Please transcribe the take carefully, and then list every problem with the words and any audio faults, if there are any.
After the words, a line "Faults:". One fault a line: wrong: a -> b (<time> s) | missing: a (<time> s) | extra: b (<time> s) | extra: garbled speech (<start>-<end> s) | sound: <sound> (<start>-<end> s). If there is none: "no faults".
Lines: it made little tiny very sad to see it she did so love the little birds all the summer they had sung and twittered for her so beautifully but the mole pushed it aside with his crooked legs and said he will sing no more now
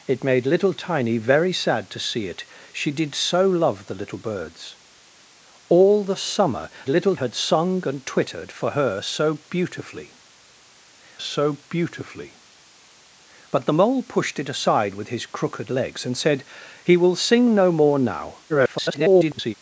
it made little tiny very sad to see it she did so love the little birds all the summer little had sung and twittered for her so beautifully so beautifully but the mole pushed it aside with his crooked legs and said he will sing no more now [garbled]
Faults:
wrong: they -> little (6.9 s)
extra: so beautifully (11.2 s)
extra: garbled speech (18.5-19.5 s)